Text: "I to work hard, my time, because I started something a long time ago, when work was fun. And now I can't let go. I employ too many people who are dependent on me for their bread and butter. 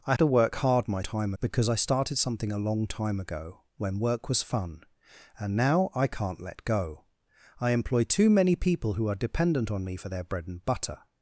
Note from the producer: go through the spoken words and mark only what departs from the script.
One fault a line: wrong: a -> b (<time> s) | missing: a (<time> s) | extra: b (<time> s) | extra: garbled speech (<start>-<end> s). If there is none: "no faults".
no faults